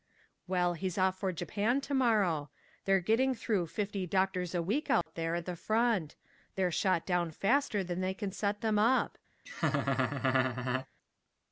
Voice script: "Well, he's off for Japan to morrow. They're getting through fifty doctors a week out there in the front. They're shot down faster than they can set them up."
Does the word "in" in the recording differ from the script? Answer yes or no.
yes